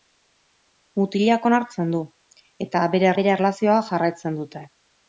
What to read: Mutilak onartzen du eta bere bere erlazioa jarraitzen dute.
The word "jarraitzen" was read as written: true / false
true